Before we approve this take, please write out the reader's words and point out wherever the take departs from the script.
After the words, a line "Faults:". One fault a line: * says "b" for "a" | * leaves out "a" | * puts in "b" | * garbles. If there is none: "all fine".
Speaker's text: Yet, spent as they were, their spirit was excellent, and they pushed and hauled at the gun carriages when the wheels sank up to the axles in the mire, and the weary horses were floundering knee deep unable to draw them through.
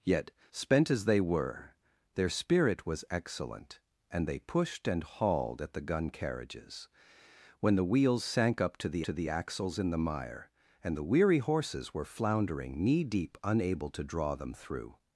Yet, spent as they were, their spirit was excellent, and they pushed and hauled at the gun carriages when the wheels sank up to the to the axles in the mire, and the weary horses were floundering knee deep unable to draw them through.
Faults:
* puts in "to the"